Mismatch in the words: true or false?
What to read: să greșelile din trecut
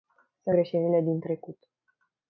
false